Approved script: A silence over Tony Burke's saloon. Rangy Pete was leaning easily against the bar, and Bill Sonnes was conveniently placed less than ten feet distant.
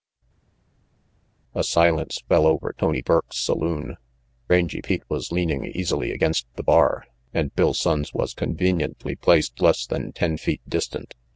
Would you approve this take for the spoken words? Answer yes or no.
no